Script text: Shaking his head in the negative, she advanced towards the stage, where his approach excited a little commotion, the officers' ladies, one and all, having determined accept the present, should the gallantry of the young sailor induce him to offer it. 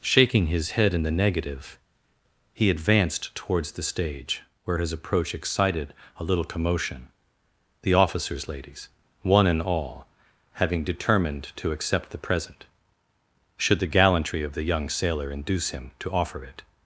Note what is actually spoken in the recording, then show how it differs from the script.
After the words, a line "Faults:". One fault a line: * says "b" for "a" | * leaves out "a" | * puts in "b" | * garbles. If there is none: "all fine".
Shaking his head in the negative, he advanced towards the stage, where his approach excited a little commotion, the officers' ladies, one and all, having determined to accept the present, should the gallantry of the young sailor induce him to offer it.
Faults:
* says "he" for "she"
* puts in "to"